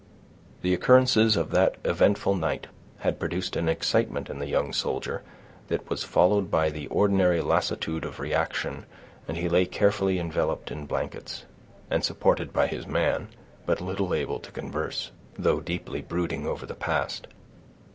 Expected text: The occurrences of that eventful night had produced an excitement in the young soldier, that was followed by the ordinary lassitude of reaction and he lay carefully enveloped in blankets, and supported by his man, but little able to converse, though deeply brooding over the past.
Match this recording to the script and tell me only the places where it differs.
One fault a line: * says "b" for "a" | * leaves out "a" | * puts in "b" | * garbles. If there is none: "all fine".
all fine